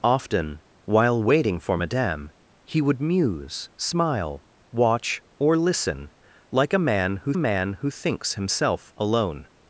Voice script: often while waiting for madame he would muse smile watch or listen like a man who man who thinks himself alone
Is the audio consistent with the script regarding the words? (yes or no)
yes